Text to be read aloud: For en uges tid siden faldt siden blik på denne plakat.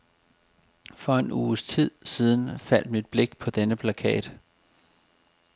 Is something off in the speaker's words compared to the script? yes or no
yes